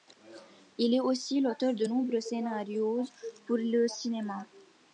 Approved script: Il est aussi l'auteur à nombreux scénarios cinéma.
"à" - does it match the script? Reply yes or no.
no